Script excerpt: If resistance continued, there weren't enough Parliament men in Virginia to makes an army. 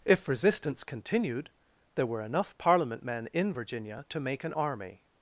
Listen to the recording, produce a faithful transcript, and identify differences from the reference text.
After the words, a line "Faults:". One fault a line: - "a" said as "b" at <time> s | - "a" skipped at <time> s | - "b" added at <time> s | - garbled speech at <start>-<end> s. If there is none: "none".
If resistance continued, there were enough Parliament men in Virginia to make an army.
Faults:
- "weren't" said as "were" at 2.1 s
- "makes" said as "make" at 4.2 s